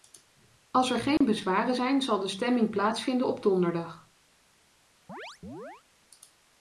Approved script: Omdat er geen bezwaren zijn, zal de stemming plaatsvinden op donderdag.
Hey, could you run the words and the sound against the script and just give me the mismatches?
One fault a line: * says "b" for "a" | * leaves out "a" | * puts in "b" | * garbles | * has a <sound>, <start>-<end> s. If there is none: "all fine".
* says "Als" for "Omdat"
* has a dropout, 1.2-1.2 s
* has a chirp, 5.1-5.8 s